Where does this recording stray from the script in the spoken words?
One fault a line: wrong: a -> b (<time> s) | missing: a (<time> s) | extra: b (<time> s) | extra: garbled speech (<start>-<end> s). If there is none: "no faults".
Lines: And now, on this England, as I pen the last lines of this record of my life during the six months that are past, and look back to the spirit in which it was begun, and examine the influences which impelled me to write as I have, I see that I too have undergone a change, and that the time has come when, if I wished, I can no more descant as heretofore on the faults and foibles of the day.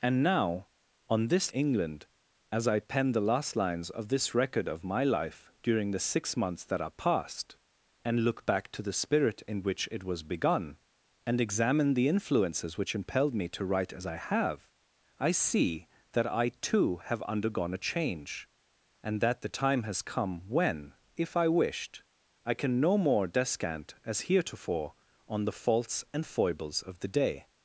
no faults